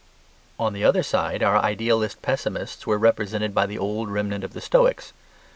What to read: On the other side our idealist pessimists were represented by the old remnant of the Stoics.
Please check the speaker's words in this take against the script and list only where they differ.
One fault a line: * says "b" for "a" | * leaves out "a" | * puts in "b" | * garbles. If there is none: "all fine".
all fine